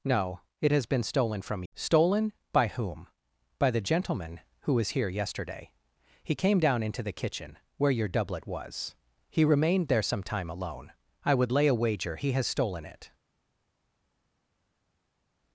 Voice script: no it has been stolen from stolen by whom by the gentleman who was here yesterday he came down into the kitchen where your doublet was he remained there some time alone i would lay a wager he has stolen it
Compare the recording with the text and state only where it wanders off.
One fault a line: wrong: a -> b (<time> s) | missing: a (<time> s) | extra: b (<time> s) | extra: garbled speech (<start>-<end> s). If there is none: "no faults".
no faults